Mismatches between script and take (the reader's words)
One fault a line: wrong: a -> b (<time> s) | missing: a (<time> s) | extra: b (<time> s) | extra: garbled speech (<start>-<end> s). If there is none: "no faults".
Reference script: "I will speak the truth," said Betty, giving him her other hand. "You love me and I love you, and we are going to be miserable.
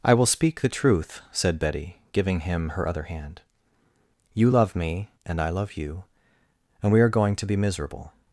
no faults